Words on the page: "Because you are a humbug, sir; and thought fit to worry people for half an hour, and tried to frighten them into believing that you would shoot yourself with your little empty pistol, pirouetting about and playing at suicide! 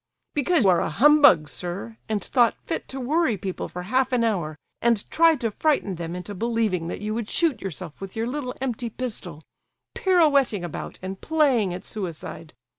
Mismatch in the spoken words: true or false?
true